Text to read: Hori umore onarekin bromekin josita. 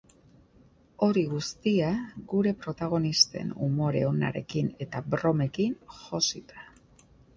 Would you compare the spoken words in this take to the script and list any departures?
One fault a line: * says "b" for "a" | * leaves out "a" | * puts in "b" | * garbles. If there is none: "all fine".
* puts in "guztia gure protagonisten"
* puts in "eta"